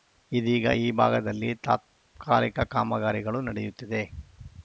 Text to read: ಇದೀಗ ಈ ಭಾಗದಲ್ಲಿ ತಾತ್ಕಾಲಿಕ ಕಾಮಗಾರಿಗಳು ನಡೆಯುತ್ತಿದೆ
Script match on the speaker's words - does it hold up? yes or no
yes